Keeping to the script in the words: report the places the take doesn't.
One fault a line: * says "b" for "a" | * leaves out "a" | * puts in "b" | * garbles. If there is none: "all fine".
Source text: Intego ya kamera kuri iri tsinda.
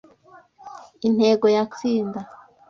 * leaves out "kamera kuri iri"